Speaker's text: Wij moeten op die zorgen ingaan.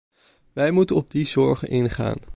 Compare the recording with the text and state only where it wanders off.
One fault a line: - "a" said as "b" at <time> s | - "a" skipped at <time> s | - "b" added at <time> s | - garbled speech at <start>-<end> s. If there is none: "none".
none